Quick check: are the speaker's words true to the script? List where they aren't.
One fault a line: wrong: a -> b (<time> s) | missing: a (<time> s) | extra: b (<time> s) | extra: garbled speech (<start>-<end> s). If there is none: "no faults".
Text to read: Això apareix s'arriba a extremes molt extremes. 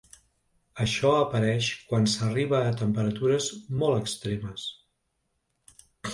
extra: quan (1.9 s)
wrong: extremes -> temperatures (2.8 s)